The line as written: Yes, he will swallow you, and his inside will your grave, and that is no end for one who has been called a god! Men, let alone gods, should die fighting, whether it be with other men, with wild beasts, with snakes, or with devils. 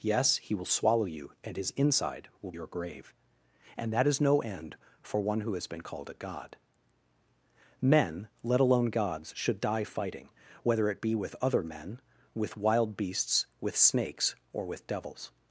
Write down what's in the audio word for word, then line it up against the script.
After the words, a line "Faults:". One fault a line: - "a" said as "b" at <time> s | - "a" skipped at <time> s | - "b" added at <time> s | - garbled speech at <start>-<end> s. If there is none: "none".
Yes, he will swallow you, and his inside will your grave, and that is no end for one who has been called a god! Men, let alone gods, should die fighting, whether it be with other men, with wild beasts, with snakes, or with devils.
Faults:
none